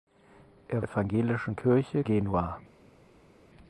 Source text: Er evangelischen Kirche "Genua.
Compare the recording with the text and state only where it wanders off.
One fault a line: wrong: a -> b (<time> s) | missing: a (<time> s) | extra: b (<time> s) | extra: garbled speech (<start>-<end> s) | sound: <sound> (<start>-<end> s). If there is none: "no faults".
no faults